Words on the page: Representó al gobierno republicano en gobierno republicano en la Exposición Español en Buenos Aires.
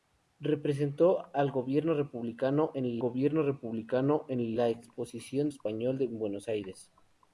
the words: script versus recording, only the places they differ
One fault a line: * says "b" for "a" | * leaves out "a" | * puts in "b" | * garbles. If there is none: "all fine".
all fine